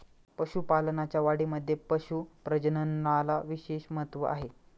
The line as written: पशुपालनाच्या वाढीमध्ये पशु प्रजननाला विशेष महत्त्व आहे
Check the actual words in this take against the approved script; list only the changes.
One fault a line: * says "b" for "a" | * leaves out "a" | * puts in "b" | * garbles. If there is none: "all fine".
all fine